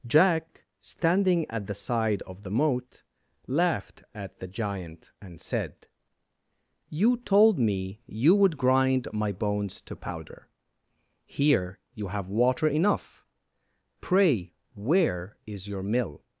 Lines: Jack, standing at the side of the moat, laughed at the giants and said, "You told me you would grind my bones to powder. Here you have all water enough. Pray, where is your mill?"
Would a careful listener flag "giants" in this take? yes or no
yes